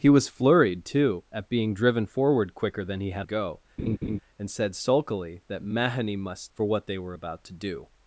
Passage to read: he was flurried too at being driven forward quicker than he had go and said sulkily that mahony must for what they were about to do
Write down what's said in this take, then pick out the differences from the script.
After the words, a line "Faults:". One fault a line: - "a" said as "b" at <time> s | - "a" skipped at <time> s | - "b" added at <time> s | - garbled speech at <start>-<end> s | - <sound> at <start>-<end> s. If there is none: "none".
he was flurried too at being driven forward quicker than he had go and said sulkily that mahony must for what they were about to do
Faults:
- laugh at 3.8-4.2 s